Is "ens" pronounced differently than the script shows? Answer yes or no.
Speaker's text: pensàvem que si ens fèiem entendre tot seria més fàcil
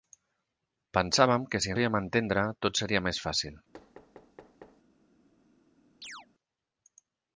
yes